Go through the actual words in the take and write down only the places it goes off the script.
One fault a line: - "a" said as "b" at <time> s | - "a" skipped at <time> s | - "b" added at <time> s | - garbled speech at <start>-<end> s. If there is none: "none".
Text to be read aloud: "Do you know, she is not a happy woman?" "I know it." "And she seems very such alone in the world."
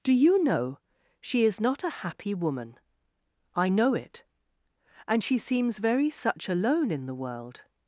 none